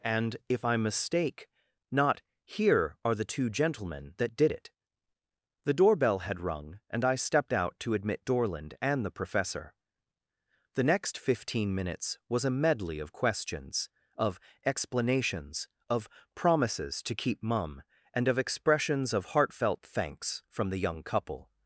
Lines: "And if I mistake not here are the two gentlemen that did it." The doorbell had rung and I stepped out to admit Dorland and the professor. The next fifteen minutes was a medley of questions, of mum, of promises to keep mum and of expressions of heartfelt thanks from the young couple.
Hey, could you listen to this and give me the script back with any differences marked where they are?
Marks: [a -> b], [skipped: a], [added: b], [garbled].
"And if I mistake not here are the two gentlemen that did it." The doorbell had rung and I stepped out to admit Dorland and the professor. The next fifteen minutes was a medley of questions, of [mum, -> explanations] of promises to keep mum and of expressions of heartfelt thanks from the young couple.